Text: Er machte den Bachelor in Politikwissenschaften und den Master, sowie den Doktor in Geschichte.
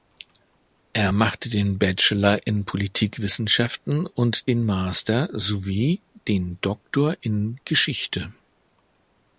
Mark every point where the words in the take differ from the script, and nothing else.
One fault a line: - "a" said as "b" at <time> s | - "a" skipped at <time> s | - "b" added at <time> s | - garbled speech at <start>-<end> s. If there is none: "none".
none